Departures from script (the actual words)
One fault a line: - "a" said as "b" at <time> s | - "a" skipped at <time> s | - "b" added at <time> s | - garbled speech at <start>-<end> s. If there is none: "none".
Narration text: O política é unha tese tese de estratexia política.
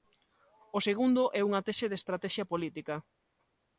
- "política" said as "segundo" at 0.9 s
- "tese" skipped at 1.8 s